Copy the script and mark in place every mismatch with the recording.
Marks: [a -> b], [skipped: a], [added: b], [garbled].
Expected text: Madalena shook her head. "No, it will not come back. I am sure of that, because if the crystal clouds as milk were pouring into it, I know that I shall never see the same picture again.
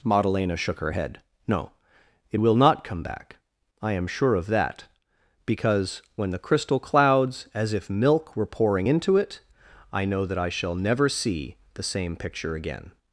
Madalena shook her head. "No, it will not come back. I am sure of that, because [if -> when] the crystal clouds as [added: if] milk were pouring into it, I know that I shall never see the same picture again.